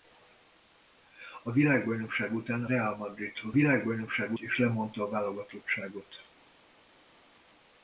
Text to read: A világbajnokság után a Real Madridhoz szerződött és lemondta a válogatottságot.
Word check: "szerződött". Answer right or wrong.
wrong